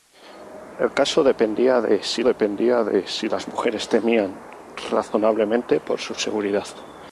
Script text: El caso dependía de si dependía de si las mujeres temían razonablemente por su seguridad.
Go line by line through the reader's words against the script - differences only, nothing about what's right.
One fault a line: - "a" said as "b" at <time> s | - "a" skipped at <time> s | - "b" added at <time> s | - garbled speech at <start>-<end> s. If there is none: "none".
none